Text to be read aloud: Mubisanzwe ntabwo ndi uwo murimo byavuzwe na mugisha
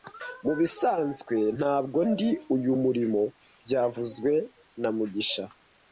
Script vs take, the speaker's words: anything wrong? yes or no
yes